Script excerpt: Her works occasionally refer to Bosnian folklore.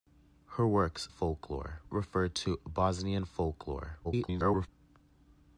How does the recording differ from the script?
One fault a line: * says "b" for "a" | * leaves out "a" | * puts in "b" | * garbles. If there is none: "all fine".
* says "folklore" for "occasionally"
* garbles